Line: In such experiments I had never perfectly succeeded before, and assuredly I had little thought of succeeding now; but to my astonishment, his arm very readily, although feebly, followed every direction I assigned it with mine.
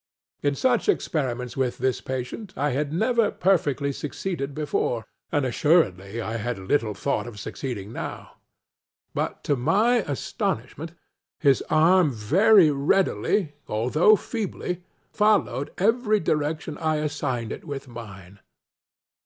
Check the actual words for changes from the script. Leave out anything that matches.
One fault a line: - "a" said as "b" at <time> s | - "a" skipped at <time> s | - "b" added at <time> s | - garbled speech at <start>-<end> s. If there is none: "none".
- "with this patient" added at 1.6 s